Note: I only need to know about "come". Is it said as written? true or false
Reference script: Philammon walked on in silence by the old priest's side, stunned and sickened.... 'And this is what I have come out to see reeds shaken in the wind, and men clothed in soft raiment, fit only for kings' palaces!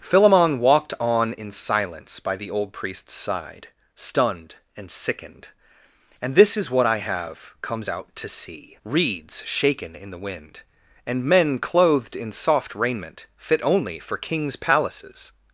false